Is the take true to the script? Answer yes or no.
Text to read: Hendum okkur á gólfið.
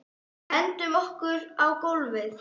yes